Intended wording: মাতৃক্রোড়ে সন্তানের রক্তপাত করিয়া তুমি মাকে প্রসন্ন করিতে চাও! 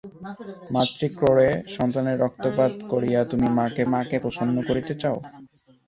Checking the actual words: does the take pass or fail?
fail